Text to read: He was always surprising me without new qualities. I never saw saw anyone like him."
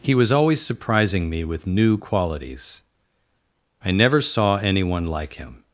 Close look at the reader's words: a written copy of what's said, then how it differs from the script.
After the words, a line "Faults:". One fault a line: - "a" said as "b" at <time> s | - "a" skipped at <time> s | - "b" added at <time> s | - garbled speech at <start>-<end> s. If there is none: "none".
He was always surprising me with new qualities. I never saw anyone like him."
Faults:
- "without" said as "with" at 1.4 s
- "saw" skipped at 4.6 s